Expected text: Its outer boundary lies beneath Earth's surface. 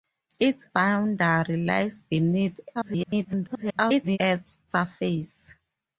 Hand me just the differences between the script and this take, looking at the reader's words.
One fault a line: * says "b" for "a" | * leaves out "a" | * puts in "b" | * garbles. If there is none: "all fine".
* leaves out "outer"
* garbles